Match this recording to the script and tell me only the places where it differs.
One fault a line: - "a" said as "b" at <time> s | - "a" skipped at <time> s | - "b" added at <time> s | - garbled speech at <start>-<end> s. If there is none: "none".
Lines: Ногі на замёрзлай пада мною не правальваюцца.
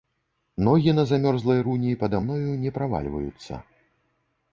- "руні" added at 1.7 s